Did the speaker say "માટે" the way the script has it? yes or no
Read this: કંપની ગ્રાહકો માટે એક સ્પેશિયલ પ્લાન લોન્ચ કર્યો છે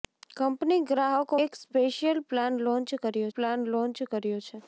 no